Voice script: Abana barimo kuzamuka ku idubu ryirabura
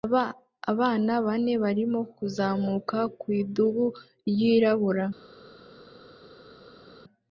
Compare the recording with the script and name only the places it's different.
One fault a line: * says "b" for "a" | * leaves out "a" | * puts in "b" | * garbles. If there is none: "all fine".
* puts in "bane"